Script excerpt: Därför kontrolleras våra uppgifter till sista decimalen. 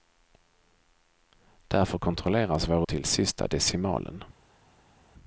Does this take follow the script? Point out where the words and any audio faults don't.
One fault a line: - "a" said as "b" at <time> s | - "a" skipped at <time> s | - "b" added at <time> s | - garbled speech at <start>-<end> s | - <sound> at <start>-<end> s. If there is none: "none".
- "uppgifter" skipped at 2.9 s